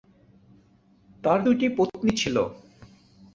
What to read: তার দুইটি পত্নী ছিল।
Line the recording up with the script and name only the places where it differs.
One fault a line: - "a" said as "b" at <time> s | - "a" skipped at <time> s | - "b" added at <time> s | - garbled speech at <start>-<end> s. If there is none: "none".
none